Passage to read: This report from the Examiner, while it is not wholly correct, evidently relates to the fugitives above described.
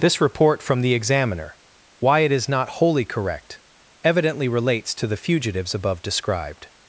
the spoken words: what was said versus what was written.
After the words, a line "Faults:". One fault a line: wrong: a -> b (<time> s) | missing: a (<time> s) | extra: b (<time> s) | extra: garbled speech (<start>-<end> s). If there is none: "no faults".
This report from the Examiner, why it is not wholly correct, evidently relates to the fugitives above described.
Faults:
wrong: while -> why (2.0 s)